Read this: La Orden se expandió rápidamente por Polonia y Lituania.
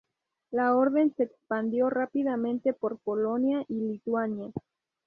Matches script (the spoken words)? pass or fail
pass